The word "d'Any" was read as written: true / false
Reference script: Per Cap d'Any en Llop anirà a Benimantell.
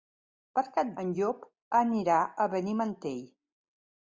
false